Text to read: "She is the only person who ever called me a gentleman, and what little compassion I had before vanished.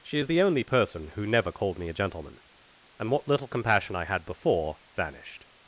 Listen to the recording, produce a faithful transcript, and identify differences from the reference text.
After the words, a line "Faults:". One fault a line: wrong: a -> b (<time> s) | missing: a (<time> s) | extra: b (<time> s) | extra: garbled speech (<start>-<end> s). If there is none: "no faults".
"She is the only person who never called me a gentleman, and what little compassion I had before vanished.
Faults:
wrong: ever -> never (1.3 s)